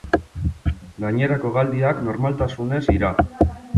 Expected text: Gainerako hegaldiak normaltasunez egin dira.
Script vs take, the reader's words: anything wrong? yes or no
yes